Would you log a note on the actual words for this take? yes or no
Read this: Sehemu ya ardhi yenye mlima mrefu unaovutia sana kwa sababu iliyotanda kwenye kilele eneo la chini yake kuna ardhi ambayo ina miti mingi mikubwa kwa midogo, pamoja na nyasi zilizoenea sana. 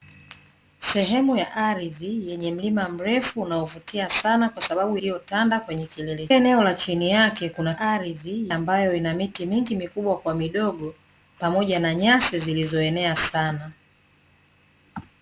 no